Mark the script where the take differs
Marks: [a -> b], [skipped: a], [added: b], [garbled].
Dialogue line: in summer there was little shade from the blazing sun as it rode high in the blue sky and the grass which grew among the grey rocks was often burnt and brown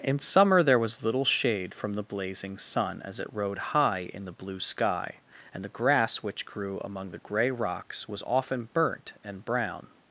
in summer there was little shade from the blazing sun as it rode high in the blue sky and the grass which grew among the grey rocks was often burnt and brown